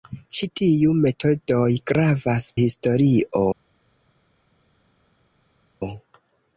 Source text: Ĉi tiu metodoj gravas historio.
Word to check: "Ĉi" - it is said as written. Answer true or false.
true